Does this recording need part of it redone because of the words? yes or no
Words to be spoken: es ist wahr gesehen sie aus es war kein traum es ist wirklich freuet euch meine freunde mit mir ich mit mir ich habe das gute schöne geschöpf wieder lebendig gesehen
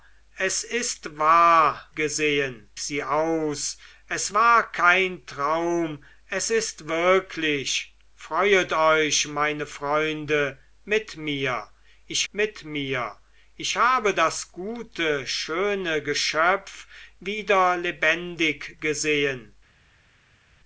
no